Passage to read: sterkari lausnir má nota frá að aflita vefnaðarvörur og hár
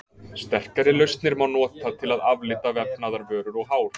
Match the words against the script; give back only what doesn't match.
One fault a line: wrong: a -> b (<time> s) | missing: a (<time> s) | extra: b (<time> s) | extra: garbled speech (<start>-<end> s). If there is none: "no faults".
wrong: frá -> til (2.0 s)